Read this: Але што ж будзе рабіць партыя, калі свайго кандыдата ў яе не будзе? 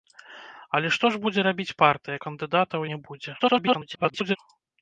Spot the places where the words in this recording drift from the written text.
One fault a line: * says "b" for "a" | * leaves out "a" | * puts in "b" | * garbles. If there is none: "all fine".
* leaves out "калі свайго"
* leaves out "яе"
* garbles